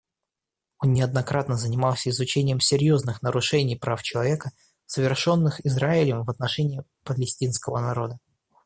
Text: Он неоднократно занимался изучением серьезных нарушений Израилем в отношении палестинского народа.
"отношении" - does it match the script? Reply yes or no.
yes